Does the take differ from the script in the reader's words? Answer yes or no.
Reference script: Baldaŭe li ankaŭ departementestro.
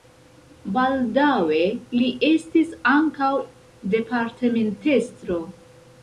yes